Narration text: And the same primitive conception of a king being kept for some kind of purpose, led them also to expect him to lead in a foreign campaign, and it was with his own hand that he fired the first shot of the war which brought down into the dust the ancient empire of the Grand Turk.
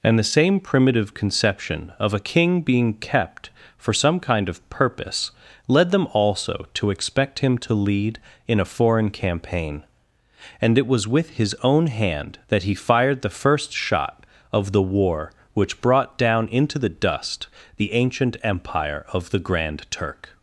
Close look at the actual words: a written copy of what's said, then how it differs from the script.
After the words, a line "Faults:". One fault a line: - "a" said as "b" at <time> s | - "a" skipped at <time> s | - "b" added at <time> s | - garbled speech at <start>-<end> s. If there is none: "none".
And the same primitive conception of a king being kept for some kind of purpose, led them also to expect him to lead in a foreign campaign, and it was with his own hand that he fired the first shot of the war which brought down into the dust the ancient empire of the Grand Turk.
Faults:
none